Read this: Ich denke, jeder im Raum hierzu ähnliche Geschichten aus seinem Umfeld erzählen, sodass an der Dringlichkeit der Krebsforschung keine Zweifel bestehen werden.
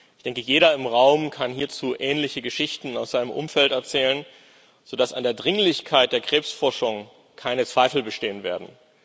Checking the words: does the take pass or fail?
fail